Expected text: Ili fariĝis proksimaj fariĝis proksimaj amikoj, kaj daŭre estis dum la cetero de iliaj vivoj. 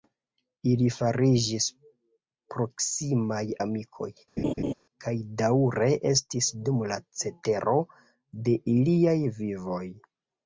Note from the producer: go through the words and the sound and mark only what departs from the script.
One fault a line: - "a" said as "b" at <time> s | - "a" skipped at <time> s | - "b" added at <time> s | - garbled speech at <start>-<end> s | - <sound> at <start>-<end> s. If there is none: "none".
- "fariĝis proksimaj" skipped at 3.4 s
- laugh at 4.4-4.7 s